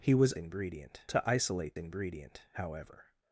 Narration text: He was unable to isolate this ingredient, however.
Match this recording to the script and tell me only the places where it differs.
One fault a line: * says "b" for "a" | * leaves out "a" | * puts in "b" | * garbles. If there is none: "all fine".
* says "ingredient" for "unable"
* leaves out "this"